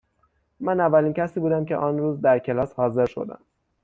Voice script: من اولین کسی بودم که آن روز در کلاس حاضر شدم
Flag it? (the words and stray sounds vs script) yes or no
no